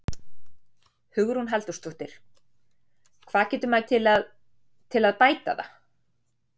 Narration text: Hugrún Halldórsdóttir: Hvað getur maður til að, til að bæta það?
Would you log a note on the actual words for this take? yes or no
no